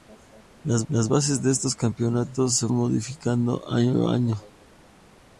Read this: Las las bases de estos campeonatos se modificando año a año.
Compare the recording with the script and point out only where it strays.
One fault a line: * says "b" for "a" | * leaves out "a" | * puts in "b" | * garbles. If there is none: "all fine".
all fine